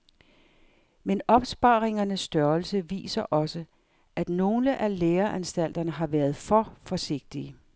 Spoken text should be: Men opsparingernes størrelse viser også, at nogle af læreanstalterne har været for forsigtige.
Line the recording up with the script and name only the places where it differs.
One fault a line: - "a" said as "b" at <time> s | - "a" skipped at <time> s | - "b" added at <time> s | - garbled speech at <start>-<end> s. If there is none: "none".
none